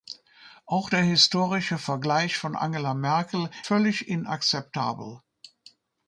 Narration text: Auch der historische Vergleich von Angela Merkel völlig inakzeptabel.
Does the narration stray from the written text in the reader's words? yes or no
no